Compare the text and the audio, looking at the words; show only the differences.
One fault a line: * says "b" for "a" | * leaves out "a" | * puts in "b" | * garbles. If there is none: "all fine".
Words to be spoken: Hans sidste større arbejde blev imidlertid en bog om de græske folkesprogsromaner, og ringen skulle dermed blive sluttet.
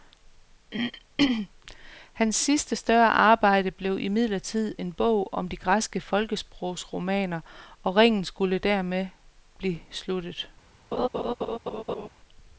all fine